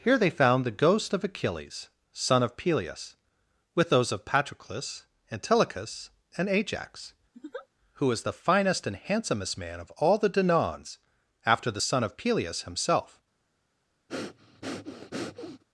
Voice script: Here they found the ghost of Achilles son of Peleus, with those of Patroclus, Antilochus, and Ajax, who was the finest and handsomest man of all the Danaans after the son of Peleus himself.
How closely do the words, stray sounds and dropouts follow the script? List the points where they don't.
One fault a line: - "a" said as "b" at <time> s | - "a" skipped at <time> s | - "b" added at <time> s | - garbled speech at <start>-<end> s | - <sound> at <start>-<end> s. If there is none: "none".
- laugh at 7.3-7.7 s
- breath at 14.1-15.6 s